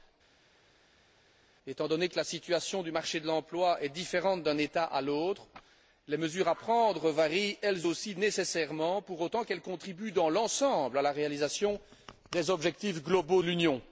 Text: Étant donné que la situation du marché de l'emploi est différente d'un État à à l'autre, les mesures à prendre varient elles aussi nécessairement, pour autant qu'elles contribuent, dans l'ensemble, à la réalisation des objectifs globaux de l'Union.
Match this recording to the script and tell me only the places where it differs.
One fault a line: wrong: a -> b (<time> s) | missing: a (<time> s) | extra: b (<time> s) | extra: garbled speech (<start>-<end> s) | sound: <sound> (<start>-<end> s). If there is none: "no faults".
missing: à (5.0 s)